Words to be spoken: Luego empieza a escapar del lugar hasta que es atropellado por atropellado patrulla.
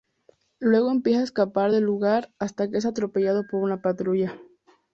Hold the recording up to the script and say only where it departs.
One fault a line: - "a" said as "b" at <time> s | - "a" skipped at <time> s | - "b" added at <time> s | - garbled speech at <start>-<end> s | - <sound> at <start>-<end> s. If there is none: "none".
- "atropellado" said as "una" at 3.6 s